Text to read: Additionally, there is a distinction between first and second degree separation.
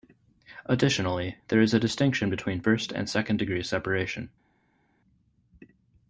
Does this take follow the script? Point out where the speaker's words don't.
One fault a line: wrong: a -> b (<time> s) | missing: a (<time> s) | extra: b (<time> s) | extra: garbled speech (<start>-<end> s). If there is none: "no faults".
no faults